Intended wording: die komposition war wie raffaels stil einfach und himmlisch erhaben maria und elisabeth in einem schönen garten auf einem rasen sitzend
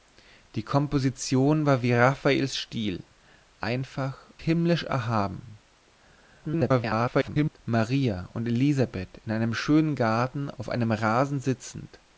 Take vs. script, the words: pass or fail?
fail